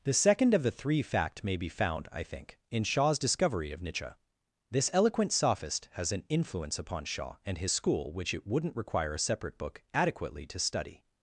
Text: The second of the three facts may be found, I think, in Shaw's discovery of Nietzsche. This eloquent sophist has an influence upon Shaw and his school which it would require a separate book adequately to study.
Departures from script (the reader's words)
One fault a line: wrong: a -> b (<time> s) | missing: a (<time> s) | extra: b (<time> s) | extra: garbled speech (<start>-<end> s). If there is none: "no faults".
wrong: facts -> fact (1.0 s)
wrong: would -> wouldn't (8.5 s)